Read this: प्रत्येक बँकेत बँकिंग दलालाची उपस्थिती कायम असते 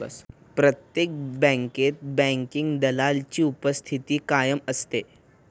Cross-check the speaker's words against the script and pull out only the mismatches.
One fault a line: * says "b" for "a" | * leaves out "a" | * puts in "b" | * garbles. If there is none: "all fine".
all fine